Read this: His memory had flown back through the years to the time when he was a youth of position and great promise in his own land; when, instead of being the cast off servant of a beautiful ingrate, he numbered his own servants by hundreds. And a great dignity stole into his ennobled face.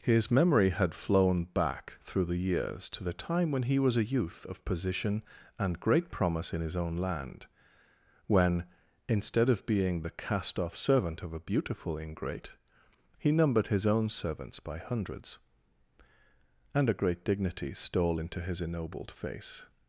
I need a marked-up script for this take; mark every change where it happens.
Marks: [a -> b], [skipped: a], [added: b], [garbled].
His memory had flown back through the years to the time when he was a youth of position and great promise in his own land; when, instead of being the cast off servant of a beautiful ingrate, he numbered his own servants by hundreds. And a great dignity stole into his ennobled face.